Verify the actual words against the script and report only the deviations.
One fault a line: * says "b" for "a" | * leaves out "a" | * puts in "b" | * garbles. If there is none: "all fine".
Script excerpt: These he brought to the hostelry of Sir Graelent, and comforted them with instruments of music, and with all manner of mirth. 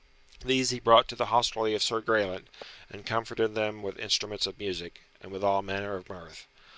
all fine